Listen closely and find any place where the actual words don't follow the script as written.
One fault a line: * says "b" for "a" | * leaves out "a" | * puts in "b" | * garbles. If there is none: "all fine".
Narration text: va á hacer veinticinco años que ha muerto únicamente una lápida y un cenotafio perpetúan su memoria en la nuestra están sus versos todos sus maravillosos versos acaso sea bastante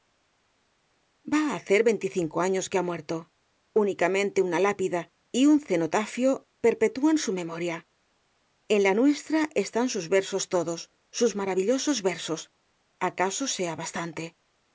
all fine